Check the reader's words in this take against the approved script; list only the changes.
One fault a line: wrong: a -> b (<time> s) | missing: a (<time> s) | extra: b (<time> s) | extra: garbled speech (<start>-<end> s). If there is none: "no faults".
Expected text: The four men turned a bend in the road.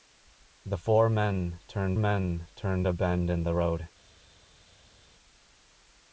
extra: men turned (2.0 s)